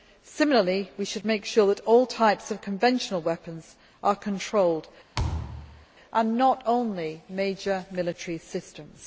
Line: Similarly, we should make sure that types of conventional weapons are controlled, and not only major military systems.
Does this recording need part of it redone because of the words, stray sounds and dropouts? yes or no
yes